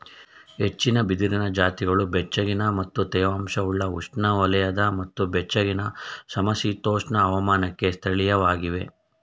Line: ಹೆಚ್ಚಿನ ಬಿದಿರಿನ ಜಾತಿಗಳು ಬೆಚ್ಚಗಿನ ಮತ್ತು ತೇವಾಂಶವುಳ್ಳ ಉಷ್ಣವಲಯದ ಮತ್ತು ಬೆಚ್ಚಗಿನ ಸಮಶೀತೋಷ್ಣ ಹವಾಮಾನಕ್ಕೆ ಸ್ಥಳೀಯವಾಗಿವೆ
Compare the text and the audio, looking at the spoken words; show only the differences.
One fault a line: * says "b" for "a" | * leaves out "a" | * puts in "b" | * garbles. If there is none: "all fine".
all fine